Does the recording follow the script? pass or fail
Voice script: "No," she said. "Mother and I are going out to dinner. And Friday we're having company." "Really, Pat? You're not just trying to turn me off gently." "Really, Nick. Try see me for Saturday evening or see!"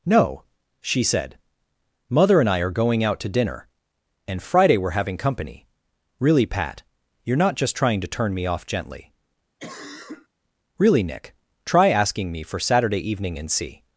fail